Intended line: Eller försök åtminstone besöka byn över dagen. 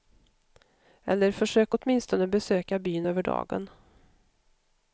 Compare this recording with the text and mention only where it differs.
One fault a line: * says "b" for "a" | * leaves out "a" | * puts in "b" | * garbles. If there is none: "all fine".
all fine